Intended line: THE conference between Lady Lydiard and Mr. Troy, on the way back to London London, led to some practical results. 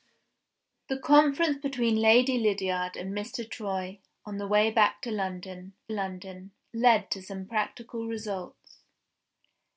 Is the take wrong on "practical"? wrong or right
right